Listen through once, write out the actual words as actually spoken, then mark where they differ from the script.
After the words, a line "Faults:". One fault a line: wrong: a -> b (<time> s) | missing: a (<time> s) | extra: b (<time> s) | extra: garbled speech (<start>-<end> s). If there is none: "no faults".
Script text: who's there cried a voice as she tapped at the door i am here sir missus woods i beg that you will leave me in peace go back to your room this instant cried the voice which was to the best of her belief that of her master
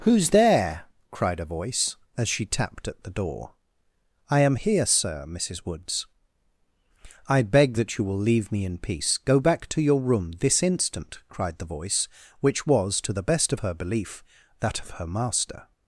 who's there cried a voice as she tapped at the door i am here sir missus woods i beg that you will leave me in peace go back to your room this instant cried the voice which was to the best of her belief that of her master
Faults:
no faults